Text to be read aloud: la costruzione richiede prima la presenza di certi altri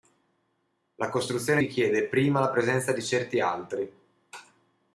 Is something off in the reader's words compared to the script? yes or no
no